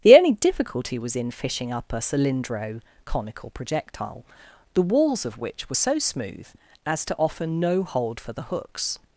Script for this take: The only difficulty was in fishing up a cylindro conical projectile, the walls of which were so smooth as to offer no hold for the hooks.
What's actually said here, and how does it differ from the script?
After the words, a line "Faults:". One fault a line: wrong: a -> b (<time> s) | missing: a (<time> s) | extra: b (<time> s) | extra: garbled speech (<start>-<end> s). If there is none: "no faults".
The only difficulty was in fishing up a cylindro conical projectile, the walls of which were so smooth as to offer no hold for the hooks.
Faults:
no faults